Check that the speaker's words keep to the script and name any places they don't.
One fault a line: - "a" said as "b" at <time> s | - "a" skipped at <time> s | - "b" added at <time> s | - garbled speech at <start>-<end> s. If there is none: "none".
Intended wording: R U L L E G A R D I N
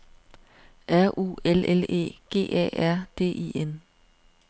none